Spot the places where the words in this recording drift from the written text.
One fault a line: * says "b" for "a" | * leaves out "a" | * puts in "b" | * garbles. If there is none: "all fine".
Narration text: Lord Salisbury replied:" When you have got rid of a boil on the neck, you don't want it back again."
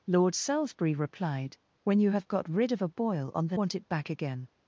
* leaves out "neck you don't"